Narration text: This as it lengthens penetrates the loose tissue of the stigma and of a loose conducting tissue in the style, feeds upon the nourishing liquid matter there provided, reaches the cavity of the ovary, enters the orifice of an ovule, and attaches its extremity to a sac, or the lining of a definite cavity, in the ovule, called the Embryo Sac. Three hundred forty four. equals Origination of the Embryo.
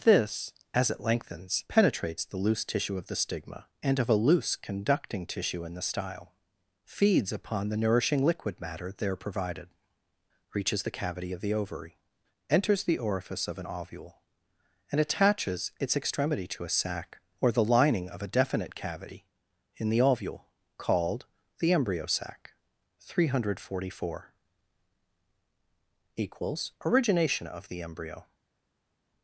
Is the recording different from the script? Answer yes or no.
no